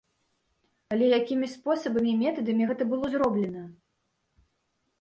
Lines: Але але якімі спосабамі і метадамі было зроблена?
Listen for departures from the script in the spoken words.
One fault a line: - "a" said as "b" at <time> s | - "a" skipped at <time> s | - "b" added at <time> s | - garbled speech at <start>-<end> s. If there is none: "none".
- "але" skipped at 1.1 s
- "гэта" added at 2.7 s